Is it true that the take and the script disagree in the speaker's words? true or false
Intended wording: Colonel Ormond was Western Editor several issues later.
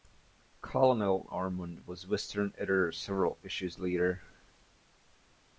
false